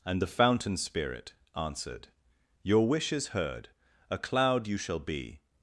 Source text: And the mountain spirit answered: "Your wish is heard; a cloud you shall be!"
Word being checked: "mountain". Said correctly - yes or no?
no